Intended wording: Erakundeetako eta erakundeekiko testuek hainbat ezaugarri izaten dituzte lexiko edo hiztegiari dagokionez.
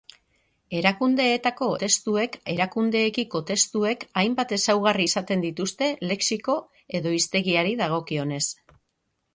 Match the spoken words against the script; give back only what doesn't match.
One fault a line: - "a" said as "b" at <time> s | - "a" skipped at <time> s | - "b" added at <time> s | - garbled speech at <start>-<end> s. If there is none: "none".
- "eta" said as "testuek" at 1.8 s